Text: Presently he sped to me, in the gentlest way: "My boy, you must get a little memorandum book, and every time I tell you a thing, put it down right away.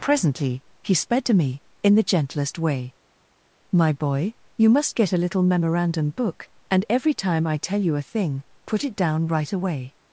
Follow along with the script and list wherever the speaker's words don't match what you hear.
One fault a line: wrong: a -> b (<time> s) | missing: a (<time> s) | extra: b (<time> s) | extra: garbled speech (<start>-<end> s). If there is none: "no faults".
no faults